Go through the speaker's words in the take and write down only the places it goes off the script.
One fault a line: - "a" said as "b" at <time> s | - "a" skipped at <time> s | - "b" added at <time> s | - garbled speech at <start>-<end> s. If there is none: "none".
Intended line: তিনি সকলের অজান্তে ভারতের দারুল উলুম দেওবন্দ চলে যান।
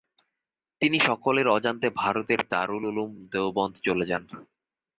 none